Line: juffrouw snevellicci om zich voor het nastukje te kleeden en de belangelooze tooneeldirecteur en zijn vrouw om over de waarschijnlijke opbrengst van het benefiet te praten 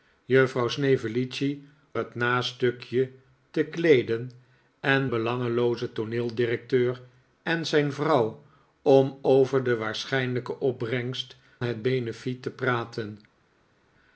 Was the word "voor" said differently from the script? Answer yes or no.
yes